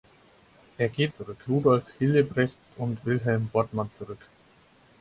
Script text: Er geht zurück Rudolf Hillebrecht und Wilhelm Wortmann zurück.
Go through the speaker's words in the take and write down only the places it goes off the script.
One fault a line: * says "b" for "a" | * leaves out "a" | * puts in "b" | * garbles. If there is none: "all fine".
all fine